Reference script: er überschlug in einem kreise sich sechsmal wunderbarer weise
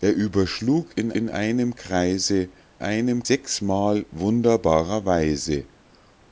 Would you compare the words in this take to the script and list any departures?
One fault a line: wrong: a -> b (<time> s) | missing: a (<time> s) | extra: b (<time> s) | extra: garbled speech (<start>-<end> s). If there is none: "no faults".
extra: in (1.1 s)
wrong: sich -> einem (2.8 s)